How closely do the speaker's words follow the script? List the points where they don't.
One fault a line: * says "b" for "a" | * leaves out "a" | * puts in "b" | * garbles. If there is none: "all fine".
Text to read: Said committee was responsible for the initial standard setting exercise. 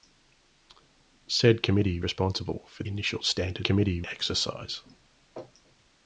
* leaves out "was"
* leaves out "the"
* says "committee" for "setting"